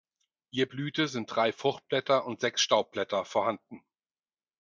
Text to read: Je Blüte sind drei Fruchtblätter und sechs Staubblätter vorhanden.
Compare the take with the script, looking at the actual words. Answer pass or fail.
pass